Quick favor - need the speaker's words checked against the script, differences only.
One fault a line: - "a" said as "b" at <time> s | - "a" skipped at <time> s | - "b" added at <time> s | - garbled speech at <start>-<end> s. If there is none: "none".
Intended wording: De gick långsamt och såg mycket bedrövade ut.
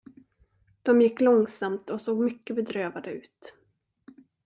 none